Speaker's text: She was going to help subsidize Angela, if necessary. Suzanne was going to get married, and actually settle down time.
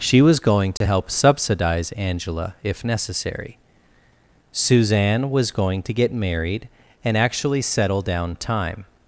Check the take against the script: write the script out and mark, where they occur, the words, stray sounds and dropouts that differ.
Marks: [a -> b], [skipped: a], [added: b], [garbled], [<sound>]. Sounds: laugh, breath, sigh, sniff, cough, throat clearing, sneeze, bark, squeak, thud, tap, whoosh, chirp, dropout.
She was going to [dropout] help subsidize Angela, if necessary. Suzanne was going to get married, and actually settle down time.